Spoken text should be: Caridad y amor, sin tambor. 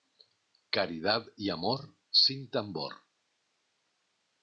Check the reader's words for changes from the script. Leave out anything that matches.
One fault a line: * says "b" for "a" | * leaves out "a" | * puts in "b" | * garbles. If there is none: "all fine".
all fine